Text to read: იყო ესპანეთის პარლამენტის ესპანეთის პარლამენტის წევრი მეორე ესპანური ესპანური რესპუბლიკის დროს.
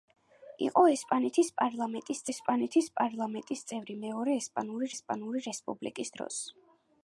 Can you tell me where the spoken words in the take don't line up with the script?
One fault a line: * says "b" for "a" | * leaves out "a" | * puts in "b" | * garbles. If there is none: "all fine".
all fine